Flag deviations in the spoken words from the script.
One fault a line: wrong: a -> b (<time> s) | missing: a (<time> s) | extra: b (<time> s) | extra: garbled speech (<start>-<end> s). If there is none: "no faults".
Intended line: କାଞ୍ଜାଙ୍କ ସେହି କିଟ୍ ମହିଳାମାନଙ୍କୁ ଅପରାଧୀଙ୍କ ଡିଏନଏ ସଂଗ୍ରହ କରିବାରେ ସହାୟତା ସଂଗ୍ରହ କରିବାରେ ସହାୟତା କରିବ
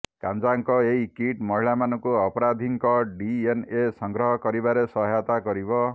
wrong: ସେହି -> ଏହି (0.8 s)
missing: ସଂଗ୍ରହ କରିବାରେ ସହାୟତା (5.4 s)